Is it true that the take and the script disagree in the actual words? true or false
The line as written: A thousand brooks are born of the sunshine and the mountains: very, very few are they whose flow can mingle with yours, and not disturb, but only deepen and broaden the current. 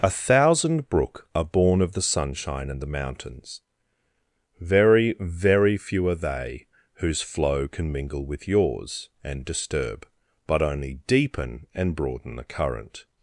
true